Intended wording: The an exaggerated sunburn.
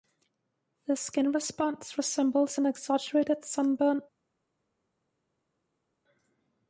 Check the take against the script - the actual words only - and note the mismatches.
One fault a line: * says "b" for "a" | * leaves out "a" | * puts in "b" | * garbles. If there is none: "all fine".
* puts in "skin response resembles"